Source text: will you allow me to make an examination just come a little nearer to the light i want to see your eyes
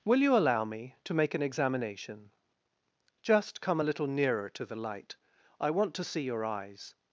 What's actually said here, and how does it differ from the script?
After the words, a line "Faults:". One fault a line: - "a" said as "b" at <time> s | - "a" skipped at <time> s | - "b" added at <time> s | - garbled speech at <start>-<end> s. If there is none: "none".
will you allow me to make an examination just come a little nearer to the light i want to see your eyes
Faults:
none